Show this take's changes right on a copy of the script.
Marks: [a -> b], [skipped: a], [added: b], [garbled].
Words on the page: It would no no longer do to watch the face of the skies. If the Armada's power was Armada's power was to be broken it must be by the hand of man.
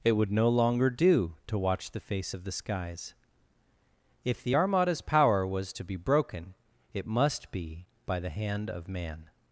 It would no [skipped: no] longer do to watch the face of the skies. If the Armada's power was [skipped: Armada's power was] to be broken it must be by the hand of man.